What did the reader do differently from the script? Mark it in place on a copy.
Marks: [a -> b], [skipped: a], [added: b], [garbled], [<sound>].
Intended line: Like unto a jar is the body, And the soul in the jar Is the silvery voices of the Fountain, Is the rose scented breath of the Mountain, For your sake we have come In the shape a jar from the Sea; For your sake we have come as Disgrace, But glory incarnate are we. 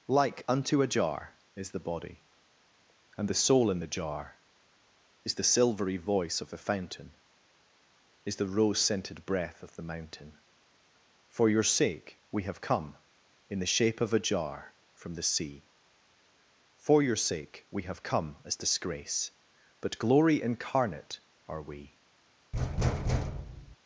Like unto a jar is the body, And the soul in the jar Is the silvery [voices -> voice] of the Fountain, Is the rose scented breath of the Mountain, For your sake we have come In the shape [added: of] a jar from the Sea; For your sake we have come as Disgrace, But glory incarnate are we. [thud]